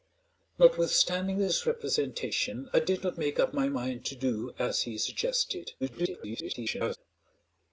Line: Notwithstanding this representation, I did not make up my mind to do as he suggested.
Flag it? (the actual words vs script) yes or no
yes